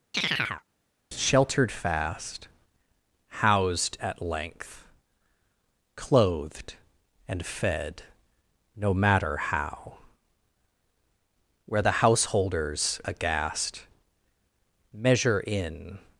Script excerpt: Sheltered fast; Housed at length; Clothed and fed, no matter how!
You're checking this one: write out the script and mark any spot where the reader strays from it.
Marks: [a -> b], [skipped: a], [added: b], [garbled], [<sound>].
[chirp] Sheltered fast; Housed at length; Clothed and fed, no matter how! [added: Where the householders aghast Measure in]